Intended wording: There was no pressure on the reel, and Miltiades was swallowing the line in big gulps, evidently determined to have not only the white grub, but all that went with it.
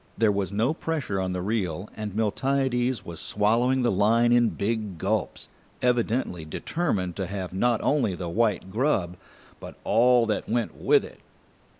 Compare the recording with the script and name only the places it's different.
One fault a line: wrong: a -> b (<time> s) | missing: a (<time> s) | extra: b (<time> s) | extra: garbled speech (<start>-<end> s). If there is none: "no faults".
no faults